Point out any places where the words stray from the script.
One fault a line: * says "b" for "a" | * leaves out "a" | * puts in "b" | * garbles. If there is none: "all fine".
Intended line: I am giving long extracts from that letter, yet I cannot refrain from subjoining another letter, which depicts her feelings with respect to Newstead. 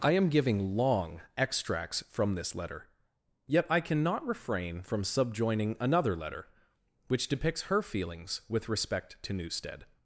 * says "this" for "that"